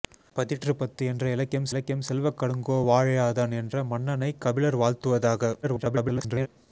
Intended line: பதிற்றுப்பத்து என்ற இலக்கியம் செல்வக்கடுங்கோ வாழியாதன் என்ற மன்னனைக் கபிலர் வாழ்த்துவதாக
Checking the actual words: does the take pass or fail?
fail